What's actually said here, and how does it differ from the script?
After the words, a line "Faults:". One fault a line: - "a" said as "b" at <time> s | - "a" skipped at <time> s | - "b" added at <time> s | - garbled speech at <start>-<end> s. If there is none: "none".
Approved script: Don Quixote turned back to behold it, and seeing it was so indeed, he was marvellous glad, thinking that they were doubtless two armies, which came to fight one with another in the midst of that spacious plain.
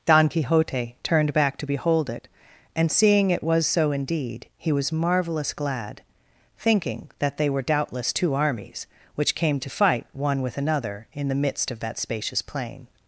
Don Quixote turned back to behold it, and seeing it was so indeed, he was marvellous glad, thinking that they were doubtless two armies, which came to fight one with another in the midst of that spacious plain.
Faults:
none